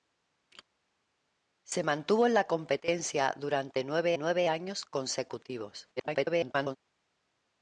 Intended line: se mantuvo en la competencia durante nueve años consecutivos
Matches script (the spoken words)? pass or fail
fail